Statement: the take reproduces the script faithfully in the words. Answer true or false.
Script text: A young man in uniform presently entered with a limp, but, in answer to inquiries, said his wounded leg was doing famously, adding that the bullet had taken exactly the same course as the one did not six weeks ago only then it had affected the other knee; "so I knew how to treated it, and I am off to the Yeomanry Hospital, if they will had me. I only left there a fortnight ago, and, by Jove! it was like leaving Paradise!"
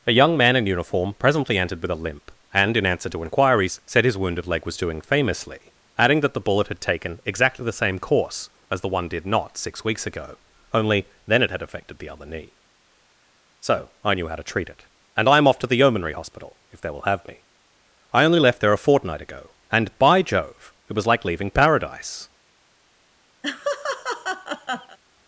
false